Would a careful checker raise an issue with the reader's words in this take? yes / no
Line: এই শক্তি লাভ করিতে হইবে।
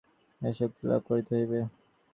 no